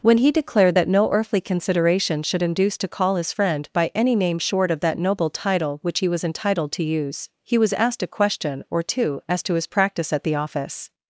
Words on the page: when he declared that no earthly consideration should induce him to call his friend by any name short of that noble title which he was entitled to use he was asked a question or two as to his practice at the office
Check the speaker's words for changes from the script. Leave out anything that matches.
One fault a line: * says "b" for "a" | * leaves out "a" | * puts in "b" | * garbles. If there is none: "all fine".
* leaves out "him"